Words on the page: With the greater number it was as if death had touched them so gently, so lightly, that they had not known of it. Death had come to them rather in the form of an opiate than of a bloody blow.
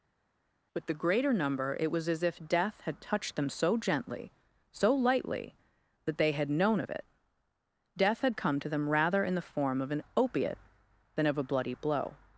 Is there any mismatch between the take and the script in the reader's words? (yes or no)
yes